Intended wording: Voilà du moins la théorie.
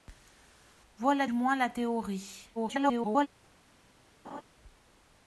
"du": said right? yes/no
no